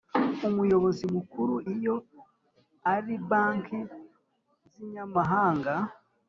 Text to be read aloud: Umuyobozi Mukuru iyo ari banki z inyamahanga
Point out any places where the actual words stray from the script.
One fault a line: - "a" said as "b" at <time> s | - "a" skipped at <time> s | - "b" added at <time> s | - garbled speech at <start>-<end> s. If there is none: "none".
none